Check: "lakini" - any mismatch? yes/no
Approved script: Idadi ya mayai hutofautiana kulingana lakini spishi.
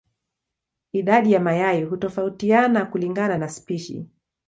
yes